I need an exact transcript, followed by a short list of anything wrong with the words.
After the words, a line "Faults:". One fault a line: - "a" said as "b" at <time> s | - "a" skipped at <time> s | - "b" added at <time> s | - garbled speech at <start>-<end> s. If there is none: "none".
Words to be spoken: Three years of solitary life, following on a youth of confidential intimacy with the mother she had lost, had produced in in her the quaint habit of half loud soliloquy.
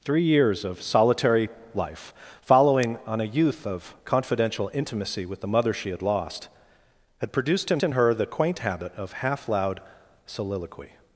Three years of solitary life, following on a youth of confidential intimacy with the mother she had lost, had produced in in her the quaint habit of half loud soliloquy.
Faults:
none